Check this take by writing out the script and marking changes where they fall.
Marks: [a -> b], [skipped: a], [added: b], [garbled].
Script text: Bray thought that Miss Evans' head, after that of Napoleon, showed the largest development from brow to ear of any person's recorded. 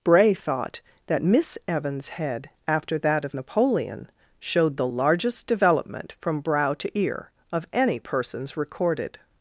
Bray thought that Miss Evans' head, after that of Napoleon, showed the largest development from brow to ear of any person's recorded.